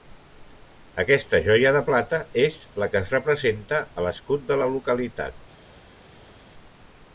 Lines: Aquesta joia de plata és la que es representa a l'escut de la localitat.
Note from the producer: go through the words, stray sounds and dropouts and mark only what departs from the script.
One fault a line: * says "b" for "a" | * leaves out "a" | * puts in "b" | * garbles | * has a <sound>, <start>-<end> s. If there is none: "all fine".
all fine